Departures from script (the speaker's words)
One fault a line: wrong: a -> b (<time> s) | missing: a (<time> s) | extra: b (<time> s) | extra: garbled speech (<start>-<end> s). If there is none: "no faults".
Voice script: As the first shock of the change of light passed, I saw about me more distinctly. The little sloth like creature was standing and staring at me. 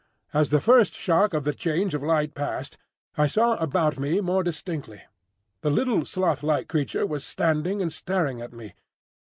no faults